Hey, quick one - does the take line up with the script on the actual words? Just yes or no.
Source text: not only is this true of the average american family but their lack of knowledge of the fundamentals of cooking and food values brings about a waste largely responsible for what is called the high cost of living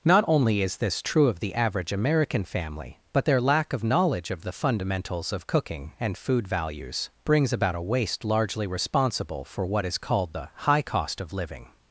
yes